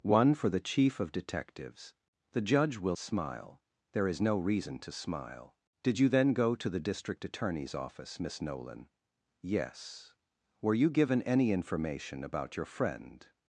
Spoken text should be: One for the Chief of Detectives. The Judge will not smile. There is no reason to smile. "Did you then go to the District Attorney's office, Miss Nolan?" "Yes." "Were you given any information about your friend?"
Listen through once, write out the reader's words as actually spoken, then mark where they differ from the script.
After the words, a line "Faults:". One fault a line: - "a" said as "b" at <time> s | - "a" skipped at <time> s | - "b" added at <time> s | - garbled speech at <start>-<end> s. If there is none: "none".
One for the Chief of Detectives. The Judge will smile. There is no reason to smile. "Did you then go to the District Attorney's office, Miss Nolan?" "Yes." "Were you given any information about your friend?"
Faults:
- "not" skipped at 3.0 s